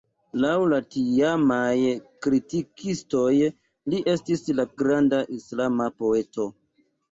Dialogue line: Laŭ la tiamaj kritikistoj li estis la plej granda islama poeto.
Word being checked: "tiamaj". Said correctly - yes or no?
yes